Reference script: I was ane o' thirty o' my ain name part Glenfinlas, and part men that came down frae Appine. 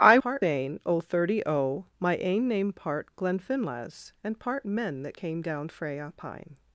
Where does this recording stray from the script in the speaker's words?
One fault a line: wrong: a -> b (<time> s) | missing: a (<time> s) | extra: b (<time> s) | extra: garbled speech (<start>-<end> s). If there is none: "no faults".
wrong: was -> part (0.2 s)